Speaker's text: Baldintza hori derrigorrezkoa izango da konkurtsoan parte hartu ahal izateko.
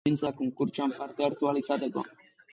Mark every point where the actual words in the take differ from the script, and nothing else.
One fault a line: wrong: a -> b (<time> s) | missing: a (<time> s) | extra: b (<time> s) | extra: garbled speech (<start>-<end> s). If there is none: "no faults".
missing: hori derrigorrezkoa izango (0.3 s)